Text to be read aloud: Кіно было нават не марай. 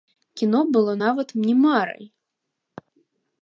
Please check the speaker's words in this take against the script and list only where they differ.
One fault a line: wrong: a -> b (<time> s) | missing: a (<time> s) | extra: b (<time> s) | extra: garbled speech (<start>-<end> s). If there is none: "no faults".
no faults